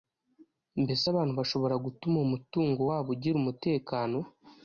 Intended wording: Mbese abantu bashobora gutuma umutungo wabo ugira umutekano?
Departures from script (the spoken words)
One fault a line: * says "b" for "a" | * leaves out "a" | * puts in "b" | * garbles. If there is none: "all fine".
all fine